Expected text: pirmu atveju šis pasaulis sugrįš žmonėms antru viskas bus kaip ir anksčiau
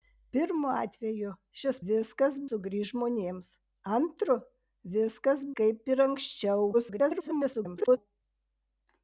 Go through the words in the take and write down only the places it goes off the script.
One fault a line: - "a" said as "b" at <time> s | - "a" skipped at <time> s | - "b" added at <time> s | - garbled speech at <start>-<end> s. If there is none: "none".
- "pasaulis" said as "viskas" at 1.9 s
- "bus" skipped at 5.5 s
- garbled speech at 6.7-8.0 s